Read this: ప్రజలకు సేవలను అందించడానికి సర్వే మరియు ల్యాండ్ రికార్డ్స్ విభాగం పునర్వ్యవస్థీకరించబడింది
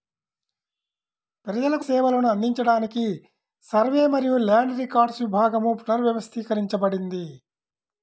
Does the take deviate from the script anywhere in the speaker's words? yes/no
no